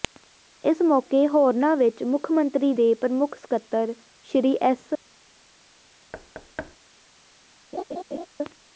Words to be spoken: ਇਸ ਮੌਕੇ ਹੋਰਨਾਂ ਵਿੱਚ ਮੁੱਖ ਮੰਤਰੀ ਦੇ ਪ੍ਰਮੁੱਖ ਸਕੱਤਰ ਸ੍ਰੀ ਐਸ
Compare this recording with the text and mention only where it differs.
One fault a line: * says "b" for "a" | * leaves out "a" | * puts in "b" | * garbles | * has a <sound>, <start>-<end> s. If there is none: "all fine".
* has a thud, 6.1-6.8 s
* has a laugh, 7.7-8.3 s